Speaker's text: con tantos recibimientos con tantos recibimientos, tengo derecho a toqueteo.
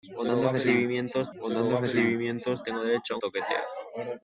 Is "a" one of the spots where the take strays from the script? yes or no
no